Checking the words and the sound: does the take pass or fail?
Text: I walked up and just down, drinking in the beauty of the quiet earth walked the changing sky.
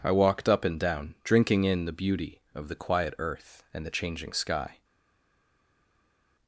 fail